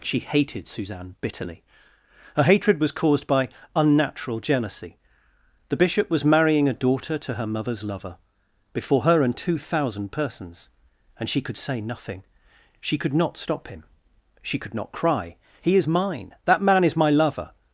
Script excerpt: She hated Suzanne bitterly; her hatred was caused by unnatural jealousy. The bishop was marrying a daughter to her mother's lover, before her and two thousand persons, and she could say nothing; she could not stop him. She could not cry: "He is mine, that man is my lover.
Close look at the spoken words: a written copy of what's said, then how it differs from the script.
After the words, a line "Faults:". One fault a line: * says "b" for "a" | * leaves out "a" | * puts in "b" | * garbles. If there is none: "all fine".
She hated Suzanne bitterly; her hatred was caused by unnatural jealousy. The bishop was marrying a daughter to her mother's lover, before her and two thousand persons, and she could say nothing; she could not stop him. She could not cry: "He is mine, that man is my lover.
Faults:
all fine